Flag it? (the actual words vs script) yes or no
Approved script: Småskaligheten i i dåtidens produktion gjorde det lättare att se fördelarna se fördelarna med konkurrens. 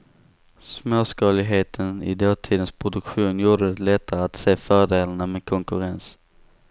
yes